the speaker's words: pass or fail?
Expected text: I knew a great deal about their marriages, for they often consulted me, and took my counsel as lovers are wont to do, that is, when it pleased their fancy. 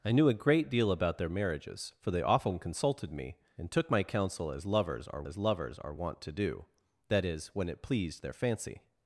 fail